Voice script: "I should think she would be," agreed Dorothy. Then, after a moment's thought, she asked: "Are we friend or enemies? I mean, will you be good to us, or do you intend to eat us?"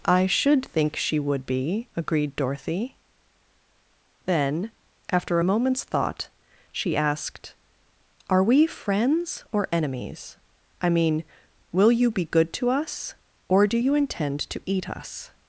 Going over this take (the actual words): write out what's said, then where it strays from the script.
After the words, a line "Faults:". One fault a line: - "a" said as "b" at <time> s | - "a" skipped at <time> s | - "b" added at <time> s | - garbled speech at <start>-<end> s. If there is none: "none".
"I should think she would be," agreed Dorothy. Then, after a moment's thought, she asked: "Are we friends or enemies? I mean, will you be good to us, or do you intend to eat us?"
Faults:
- "friend" said as "friends" at 8.7 s